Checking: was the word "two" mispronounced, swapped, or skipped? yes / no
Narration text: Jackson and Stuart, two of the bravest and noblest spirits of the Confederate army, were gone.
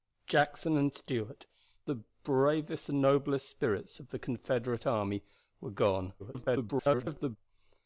yes